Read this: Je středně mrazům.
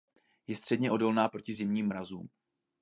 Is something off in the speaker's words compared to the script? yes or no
yes